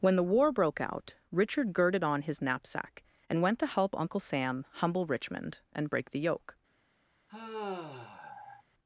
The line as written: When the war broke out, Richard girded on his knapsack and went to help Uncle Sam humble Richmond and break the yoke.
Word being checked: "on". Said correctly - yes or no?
yes